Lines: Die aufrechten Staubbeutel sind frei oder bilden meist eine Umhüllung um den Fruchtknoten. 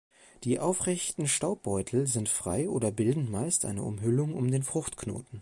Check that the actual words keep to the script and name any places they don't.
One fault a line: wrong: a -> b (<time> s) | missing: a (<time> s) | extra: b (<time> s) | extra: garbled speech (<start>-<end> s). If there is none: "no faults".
no faults